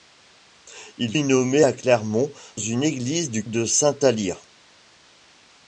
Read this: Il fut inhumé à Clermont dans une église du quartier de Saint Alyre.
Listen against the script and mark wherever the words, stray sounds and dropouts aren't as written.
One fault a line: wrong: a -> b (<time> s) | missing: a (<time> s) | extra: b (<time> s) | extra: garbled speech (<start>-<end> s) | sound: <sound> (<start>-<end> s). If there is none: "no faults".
missing: fut (1.1 s)
missing: dans (2.3 s)
missing: quartier (3.5 s)